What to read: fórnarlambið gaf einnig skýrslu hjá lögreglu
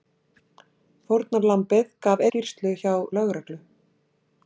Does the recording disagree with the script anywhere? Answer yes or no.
yes